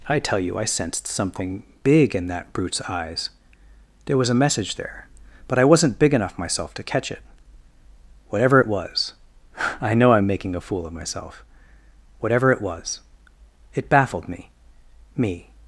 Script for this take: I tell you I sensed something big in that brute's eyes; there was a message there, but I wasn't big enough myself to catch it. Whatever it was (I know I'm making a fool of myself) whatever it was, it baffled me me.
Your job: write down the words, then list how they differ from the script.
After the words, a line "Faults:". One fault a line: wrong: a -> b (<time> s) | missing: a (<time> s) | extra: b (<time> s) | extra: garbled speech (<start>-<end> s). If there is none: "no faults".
I tell you I sensed something big in that brute's eyes; there was a message there, but I wasn't big enough myself to catch it. Whatever it was (I know I'm making a fool of myself) whatever it was, it baffled me me.
Faults:
no faults